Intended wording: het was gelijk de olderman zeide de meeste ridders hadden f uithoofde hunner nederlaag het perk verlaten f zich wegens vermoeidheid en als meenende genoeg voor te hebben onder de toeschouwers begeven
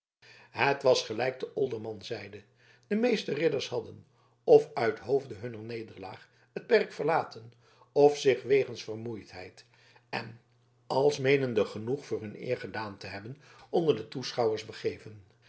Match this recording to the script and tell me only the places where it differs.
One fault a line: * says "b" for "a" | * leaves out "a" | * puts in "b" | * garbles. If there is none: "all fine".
* puts in "hun eer gedaan"